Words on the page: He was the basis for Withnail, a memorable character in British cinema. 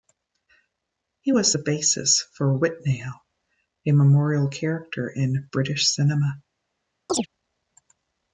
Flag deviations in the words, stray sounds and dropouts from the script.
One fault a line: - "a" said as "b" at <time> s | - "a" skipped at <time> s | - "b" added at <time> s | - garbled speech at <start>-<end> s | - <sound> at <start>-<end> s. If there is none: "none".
- chirp at 7.1-7.3 s